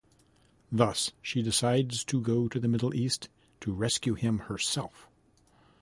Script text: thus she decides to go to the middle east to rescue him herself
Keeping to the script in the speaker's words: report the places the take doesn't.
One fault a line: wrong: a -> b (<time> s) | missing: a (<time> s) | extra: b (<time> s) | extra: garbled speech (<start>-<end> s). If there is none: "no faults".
no faults